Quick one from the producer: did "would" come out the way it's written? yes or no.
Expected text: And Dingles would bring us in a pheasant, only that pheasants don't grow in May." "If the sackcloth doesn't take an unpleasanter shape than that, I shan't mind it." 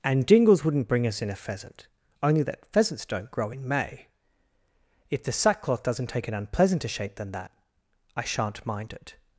no